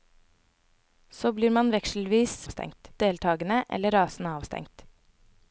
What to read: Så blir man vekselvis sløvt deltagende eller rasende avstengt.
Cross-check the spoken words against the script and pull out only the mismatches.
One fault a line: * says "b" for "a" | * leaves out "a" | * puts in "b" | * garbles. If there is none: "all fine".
* says "avstengt" for "sløvt"